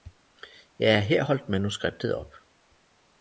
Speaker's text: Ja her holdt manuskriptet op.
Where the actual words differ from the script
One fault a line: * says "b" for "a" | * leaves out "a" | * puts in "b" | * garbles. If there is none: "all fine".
all fine